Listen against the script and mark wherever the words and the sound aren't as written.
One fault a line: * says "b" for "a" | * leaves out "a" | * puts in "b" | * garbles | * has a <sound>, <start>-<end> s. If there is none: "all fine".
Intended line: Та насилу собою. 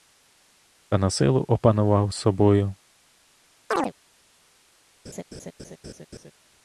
* puts in "опанував"
* has a chirp, 3.7-3.9 s
* has a laugh, 5.0-6.3 s